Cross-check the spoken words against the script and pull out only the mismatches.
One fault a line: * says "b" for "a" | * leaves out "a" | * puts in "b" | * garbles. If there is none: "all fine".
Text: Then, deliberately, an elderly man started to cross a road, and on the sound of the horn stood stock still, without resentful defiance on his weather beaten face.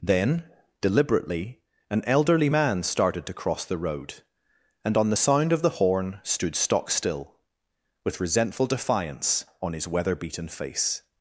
* says "the" for "a"
* says "with" for "without"